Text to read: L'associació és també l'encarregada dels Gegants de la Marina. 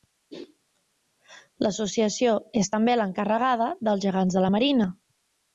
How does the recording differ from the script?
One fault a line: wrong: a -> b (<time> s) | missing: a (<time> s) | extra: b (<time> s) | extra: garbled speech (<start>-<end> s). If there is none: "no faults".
no faults